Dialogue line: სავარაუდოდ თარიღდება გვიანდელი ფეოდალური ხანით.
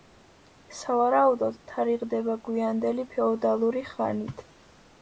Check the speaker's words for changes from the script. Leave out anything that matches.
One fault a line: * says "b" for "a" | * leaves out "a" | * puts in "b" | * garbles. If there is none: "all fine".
all fine